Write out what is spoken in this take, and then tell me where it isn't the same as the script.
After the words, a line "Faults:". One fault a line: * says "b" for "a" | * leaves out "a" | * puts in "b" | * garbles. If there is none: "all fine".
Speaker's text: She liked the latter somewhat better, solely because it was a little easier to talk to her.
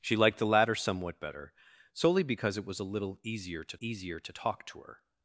She liked the latter somewhat better, solely because it was a little easier to easier to talk to her.
Faults:
* puts in "easier to"